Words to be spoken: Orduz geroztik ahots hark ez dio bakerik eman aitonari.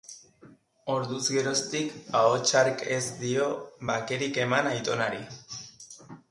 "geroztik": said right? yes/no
yes